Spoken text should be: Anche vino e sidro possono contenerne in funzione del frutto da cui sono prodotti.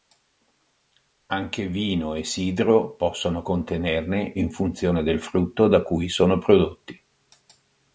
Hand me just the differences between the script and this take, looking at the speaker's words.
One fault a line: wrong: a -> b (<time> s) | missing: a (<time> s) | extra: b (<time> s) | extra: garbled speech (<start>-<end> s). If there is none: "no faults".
no faults